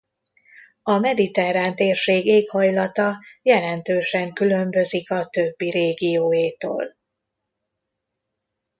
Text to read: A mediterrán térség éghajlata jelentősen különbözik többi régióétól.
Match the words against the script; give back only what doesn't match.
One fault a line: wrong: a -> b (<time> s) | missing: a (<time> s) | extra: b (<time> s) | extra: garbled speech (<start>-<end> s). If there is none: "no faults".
extra: a (5.1 s)